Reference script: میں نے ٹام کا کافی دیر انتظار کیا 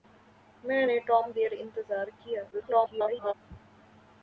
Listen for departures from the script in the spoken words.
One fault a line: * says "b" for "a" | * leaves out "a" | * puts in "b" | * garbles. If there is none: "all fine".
* leaves out "کا کافی"
* garbles